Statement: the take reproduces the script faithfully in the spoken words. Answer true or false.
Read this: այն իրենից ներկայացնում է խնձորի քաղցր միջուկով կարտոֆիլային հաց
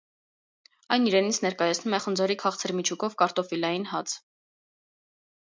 true